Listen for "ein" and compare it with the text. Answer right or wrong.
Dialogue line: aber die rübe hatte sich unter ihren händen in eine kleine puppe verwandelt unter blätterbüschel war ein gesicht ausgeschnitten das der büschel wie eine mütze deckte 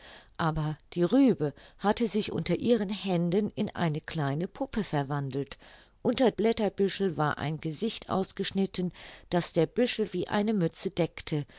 right